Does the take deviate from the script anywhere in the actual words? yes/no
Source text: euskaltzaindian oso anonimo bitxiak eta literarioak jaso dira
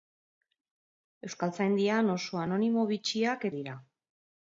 yes